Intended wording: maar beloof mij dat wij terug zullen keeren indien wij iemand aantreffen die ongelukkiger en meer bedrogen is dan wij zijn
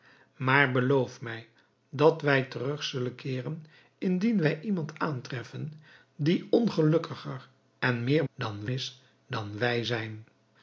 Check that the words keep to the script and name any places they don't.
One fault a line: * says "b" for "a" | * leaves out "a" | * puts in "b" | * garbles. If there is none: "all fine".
* says "dan" for "bedrogen"